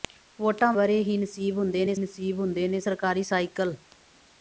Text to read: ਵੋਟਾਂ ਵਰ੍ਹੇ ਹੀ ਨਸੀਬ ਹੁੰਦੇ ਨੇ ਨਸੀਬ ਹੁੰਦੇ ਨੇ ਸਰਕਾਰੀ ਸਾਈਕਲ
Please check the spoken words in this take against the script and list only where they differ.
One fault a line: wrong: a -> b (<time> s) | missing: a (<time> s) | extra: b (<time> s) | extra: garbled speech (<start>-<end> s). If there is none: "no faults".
no faults